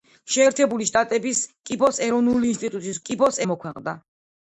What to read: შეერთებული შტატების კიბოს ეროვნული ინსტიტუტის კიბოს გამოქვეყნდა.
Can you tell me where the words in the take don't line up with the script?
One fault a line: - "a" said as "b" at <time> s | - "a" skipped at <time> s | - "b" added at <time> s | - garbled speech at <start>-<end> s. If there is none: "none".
none